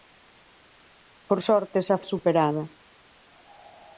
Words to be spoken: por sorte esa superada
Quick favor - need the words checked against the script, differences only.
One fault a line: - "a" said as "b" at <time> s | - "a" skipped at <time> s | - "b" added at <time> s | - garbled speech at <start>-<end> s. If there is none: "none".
none